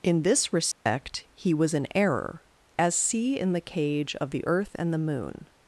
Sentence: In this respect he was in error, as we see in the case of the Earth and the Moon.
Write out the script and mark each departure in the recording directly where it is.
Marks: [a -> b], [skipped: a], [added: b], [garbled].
In this respect he was in error, as [skipped: we] see in the [case -> cage] of the Earth and the Moon.